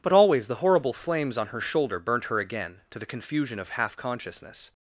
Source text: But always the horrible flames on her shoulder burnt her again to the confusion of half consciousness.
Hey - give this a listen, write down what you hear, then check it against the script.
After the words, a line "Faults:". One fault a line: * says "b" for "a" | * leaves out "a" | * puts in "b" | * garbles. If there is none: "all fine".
But always the horrible flames on her shoulder burnt her again to the confusion of half consciousness.
Faults:
all fine